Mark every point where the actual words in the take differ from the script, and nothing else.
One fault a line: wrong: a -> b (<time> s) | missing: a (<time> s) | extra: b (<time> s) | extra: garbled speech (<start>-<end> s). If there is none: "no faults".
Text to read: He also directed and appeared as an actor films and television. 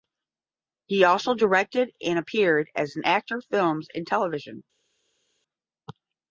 no faults